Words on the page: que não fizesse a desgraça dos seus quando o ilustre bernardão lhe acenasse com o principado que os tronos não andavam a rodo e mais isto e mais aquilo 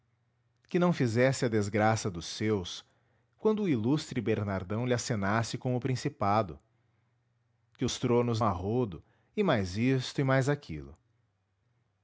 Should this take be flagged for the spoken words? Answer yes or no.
yes